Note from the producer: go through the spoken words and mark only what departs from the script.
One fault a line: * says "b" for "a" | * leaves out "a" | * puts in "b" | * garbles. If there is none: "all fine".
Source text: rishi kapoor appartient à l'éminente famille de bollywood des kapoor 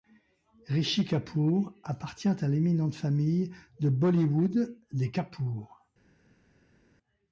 all fine